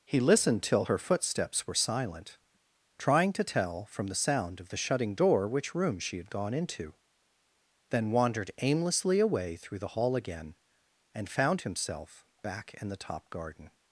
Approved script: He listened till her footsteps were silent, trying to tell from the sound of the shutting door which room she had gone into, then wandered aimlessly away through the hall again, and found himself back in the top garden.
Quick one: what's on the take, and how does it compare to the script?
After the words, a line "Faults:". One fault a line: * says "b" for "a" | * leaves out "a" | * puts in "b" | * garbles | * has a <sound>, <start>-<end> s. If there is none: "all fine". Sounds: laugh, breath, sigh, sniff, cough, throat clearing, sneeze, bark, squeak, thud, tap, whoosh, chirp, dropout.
He listened till her footsteps were silent, trying to tell from the sound of the shutting door which room she had gone into, then wandered aimlessly away through the hall again, and found himself back in the top garden.
Faults:
all fine